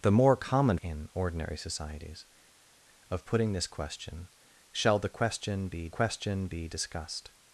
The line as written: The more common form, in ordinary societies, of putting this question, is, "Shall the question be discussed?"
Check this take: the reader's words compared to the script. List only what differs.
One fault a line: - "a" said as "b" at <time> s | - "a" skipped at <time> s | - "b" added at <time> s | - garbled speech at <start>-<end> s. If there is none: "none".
- "form" skipped at 0.8 s
- "is" skipped at 4.3 s
- "question be" added at 5.9 s